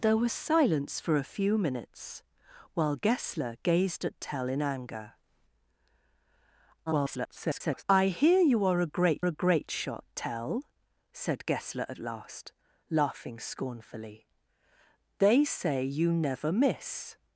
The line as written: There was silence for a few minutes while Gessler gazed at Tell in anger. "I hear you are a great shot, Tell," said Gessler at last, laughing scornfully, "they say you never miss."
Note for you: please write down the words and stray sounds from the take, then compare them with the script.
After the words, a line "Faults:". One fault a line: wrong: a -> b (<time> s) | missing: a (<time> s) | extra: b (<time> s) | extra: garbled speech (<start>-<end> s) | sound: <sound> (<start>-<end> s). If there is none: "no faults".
There was silence for a few minutes while Gessler gazed at Tell in anger. [garbled] "I hear you are a great a great shot, Tell," said Gessler at last, laughing scornfully, "they say you never miss."
Faults:
extra: garbled speech (6.9-7.8 s)
extra: a great (9.2 s)